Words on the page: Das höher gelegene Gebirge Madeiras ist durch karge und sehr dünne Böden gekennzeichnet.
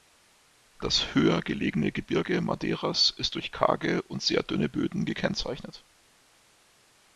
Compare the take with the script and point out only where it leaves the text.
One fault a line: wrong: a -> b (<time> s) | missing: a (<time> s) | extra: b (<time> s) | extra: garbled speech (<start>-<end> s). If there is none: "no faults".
no faults